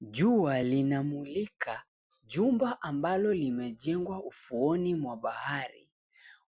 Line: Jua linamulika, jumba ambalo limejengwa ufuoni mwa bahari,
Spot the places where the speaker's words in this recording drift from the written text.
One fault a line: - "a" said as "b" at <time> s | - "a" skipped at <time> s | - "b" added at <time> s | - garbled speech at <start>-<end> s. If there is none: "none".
none